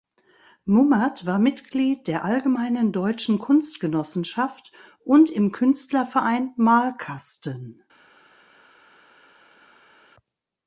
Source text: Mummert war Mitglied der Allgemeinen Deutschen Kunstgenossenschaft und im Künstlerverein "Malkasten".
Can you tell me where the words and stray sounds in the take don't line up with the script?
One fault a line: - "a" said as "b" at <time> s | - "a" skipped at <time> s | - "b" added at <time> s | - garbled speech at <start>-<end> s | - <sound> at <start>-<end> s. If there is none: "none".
none